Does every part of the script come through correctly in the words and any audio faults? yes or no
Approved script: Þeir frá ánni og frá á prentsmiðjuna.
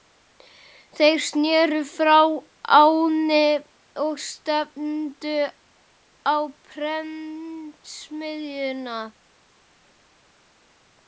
no